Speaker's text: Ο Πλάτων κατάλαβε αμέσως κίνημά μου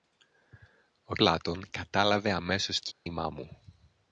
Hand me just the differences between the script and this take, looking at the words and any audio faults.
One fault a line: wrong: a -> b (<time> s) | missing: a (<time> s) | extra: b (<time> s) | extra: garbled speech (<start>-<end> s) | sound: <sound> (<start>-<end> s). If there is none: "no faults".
sound: dropout (2.9-3.1 s)